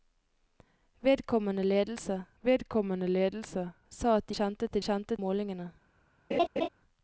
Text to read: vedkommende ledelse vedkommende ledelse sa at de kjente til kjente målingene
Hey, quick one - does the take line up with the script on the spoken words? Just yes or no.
yes